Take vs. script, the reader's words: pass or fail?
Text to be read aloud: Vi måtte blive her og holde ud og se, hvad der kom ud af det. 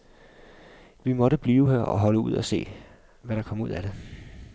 pass